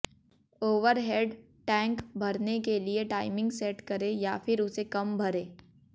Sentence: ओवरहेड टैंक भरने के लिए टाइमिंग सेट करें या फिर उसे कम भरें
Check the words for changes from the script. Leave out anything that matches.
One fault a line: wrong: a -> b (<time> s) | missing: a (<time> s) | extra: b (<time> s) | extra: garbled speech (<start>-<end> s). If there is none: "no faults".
no faults